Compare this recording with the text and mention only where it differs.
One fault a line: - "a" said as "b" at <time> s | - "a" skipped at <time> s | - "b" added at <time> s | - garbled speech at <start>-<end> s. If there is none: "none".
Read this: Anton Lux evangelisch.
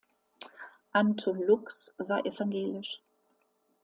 - "war" added at 2.0 s